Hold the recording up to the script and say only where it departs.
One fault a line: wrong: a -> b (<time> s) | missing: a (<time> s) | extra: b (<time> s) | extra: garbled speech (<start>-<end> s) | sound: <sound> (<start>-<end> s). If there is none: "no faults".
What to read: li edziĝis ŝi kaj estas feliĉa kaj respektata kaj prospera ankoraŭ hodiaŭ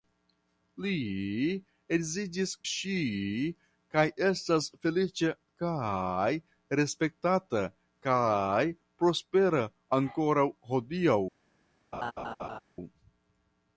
sound: laugh (11.9-12.6 s)